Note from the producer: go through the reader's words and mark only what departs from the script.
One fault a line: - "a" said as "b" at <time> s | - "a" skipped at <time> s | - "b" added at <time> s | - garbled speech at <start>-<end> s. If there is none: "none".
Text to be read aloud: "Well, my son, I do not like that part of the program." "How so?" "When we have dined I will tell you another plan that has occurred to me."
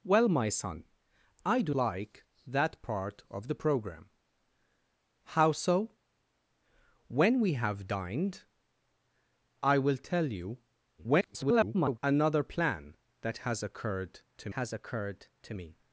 - "not" skipped at 1.8 s
- garbled speech at 11.0-12.0 s
- "has occurred to" added at 14.6 s